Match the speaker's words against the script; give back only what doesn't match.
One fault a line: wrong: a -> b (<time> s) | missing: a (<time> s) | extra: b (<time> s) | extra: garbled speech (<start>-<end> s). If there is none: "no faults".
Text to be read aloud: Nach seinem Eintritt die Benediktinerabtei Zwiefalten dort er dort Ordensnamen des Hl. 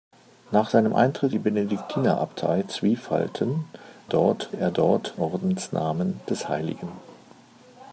no faults